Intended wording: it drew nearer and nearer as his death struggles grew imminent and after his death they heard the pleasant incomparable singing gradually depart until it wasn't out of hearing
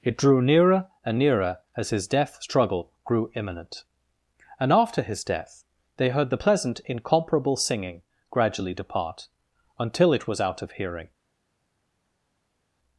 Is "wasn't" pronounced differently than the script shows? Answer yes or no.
yes